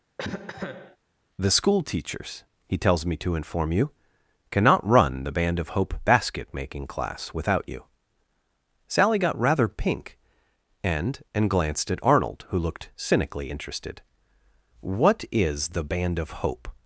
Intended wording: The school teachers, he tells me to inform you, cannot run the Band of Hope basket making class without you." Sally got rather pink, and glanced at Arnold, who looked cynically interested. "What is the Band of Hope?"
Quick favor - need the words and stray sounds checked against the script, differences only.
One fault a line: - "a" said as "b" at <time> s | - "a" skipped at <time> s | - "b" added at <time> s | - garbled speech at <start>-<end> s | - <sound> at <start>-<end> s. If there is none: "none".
- cough at 0.2-1.0 s
- "and" added at 11.4 s